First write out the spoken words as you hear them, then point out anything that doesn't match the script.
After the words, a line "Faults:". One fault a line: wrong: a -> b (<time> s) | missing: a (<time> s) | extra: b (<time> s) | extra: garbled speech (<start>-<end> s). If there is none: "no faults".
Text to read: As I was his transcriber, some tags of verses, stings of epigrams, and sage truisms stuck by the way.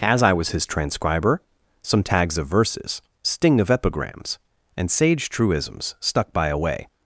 As I was his transcriber, some tags of verses, sting of epigrams, and sage truisms stuck by a way.
Faults:
wrong: stings -> sting (3.2 s)
wrong: the -> a (6.5 s)